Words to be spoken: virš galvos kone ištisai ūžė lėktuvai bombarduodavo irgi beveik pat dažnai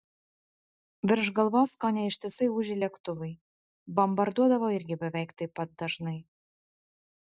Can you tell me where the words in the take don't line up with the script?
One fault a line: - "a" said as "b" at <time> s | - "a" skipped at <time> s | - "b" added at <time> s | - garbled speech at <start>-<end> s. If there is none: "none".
- "taip" added at 5.4 s